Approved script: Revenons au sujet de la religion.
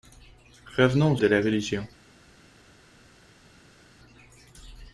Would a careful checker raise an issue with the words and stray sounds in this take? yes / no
yes